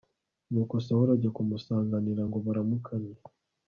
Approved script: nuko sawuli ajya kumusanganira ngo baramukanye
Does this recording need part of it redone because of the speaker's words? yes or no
no